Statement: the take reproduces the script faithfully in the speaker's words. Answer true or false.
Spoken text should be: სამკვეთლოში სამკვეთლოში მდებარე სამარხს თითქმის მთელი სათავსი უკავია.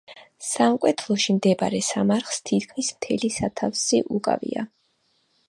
false